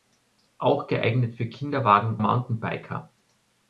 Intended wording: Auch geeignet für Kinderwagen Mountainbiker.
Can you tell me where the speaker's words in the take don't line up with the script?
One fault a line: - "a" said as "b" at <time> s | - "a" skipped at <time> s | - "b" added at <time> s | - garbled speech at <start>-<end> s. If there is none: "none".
none